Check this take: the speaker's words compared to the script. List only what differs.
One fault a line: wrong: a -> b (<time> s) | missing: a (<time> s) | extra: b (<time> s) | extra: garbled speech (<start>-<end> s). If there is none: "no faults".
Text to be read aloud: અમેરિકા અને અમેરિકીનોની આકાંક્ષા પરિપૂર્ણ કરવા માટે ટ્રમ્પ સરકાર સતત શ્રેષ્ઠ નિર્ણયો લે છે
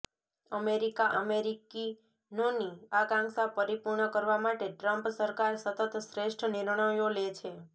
missing: અને (1.1 s)